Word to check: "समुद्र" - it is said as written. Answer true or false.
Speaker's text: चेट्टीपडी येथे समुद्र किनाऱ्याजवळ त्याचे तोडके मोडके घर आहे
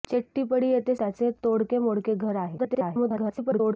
false